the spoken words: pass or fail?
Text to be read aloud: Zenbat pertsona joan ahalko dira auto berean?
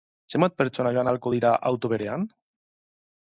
pass